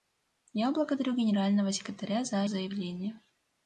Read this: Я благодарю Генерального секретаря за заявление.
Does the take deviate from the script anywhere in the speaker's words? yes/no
no